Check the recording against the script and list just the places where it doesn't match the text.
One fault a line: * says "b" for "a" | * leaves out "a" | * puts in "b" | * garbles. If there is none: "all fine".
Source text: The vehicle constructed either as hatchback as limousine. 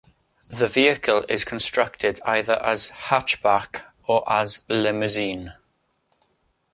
* puts in "is"
* puts in "or"